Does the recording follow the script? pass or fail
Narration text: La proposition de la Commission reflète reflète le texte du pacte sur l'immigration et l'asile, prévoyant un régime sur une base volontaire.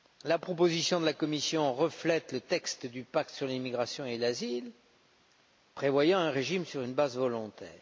fail